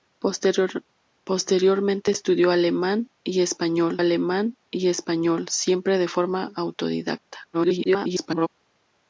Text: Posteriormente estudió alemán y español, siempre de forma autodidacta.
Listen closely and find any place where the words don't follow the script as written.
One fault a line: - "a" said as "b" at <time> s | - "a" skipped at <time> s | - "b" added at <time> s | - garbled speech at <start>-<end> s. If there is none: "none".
- "alemán y español" added at 4.0 s
- garbled speech at 7.5-8.5 s